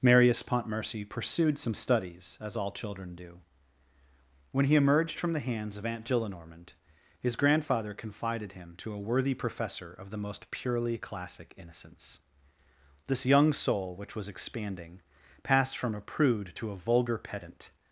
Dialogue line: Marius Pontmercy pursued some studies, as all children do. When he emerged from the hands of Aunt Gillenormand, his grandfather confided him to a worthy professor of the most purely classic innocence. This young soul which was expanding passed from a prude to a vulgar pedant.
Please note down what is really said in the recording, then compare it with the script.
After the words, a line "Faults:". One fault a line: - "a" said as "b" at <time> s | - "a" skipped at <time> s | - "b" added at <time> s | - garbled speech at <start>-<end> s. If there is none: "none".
Marius Pontmercy pursued some studies, as all children do. When he emerged from the hands of Aunt Gillenormand, his grandfather confided him to a worthy professor of the most purely classic innocence. This young soul which was expanding passed from a prude to a vulgar pedant.
Faults:
none